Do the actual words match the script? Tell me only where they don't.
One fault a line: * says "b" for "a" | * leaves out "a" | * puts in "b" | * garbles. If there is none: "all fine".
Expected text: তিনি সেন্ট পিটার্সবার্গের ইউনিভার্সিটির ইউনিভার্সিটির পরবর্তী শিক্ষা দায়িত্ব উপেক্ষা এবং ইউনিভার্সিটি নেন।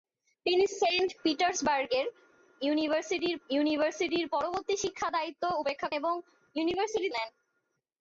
all fine